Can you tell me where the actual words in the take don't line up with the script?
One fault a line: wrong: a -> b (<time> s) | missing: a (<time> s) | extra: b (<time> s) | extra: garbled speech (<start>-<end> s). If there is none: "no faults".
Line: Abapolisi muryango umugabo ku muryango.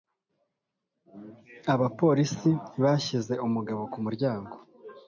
wrong: muryango -> bashyize (2.8 s)